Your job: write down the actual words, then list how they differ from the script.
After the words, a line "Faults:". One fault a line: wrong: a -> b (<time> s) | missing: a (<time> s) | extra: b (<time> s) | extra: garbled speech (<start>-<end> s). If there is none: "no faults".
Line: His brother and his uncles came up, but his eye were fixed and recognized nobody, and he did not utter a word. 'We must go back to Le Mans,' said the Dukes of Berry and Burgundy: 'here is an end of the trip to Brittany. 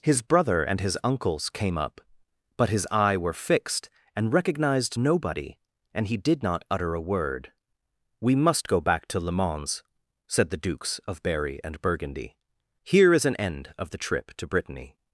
His brother and his uncles came up, but his eye were fixed and recognized nobody, and he did not utter a word. 'We must go back to Le Mans,' said the Dukes of Berry and Burgundy: 'here is an end of the trip to Brittany.
Faults:
no faults